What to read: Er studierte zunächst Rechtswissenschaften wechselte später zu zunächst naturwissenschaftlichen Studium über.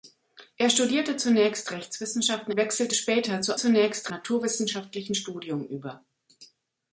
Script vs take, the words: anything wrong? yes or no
no